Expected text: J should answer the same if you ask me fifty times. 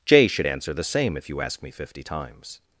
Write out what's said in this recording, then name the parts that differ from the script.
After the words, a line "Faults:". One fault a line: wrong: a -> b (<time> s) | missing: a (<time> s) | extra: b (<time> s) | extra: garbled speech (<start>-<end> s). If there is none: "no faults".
J should answer the same if you ask me fifty times.
Faults:
no faults